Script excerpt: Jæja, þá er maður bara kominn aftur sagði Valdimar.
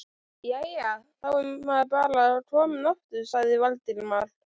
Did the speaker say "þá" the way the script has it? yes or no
yes